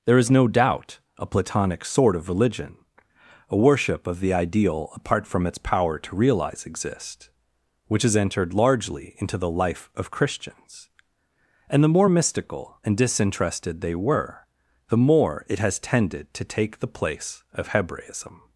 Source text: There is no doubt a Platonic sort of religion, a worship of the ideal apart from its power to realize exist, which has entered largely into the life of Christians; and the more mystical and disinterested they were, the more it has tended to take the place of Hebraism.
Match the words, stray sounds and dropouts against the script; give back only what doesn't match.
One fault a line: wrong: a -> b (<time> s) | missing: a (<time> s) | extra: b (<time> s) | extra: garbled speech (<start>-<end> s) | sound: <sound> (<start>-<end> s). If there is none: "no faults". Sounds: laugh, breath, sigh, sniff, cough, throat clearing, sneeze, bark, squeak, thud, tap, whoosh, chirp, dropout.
no faults